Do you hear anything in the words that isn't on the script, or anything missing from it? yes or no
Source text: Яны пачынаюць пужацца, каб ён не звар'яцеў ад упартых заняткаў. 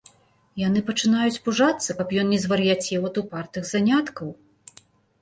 no